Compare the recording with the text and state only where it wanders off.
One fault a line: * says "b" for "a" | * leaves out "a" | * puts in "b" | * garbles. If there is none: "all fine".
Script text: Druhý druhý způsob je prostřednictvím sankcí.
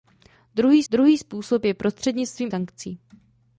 all fine